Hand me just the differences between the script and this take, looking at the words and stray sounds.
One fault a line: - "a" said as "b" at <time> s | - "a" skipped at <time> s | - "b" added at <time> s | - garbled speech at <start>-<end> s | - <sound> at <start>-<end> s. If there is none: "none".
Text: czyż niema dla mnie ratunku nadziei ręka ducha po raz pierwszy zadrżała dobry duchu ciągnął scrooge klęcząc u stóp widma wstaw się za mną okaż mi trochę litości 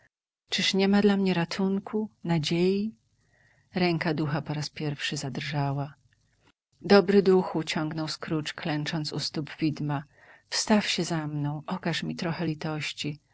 none